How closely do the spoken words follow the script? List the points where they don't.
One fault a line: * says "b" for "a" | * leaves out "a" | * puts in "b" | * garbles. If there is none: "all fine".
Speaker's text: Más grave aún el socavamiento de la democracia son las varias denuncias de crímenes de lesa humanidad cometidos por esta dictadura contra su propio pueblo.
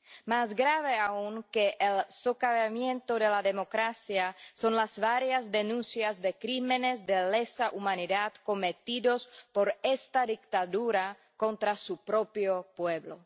* puts in "que"